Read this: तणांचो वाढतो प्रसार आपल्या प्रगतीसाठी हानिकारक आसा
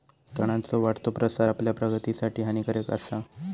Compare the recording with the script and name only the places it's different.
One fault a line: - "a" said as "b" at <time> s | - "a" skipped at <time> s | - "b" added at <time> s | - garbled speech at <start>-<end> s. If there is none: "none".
none